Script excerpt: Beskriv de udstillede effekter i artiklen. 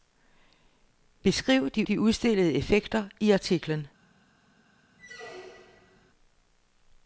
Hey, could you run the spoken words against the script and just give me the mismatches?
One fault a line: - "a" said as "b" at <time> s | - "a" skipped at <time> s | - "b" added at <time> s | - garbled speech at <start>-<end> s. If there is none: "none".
- "de" added at 1.8 s